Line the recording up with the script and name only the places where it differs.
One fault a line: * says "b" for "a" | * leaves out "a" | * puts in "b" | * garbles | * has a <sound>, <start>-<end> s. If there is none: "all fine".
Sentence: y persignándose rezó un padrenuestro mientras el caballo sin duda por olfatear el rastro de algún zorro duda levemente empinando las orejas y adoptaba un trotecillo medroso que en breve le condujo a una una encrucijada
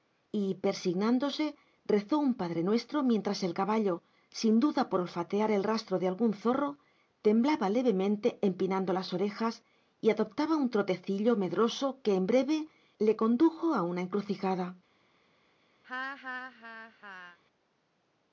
* says "temblaba" for "duda"
* leaves out "una"
* has a laugh, 15.8-17.4 s